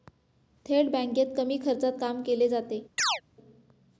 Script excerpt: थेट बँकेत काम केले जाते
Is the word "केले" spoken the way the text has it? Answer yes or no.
yes